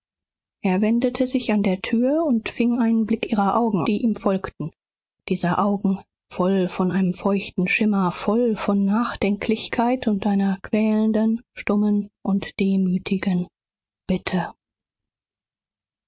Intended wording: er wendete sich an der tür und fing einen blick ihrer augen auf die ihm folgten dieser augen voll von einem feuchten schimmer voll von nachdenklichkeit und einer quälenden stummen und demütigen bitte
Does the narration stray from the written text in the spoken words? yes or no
yes